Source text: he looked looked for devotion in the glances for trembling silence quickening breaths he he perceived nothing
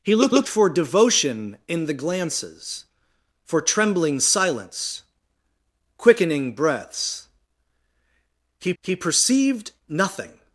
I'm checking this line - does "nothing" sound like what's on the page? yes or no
yes